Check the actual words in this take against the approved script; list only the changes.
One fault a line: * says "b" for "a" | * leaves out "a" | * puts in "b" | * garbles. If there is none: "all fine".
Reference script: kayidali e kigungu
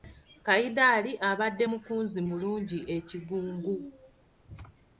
* puts in "abadde mukunzi mulungi"